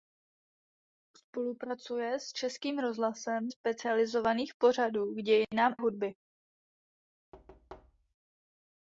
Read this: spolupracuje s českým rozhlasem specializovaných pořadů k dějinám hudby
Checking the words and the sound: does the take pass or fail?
fail